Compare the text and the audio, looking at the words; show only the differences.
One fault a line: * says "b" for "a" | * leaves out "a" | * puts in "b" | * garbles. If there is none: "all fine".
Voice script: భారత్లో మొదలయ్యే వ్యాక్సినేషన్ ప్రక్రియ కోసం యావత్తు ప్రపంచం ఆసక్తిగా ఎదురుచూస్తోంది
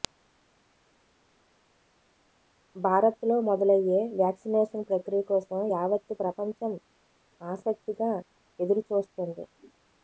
all fine